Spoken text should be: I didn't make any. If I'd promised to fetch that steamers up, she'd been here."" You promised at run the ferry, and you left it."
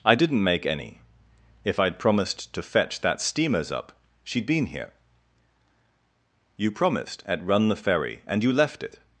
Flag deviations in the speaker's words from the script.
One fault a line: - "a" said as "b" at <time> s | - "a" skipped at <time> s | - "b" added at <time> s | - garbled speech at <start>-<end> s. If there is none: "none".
none